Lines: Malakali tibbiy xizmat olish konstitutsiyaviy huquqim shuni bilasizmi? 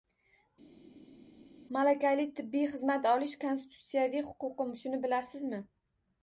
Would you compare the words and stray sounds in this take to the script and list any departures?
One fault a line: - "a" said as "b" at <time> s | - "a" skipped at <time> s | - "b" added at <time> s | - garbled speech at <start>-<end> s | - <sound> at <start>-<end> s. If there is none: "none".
none